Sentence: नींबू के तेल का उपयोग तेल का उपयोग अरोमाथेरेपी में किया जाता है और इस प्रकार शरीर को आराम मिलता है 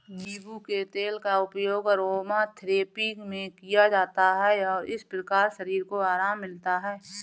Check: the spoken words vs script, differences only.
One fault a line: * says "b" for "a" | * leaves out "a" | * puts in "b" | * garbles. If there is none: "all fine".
* leaves out "तेल का उपयोग"